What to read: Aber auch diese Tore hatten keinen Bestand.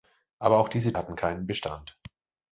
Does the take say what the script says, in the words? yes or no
no